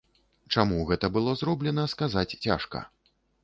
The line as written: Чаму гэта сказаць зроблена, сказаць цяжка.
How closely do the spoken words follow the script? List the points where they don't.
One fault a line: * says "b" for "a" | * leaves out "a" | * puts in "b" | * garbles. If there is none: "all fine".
* says "было" for "сказаць"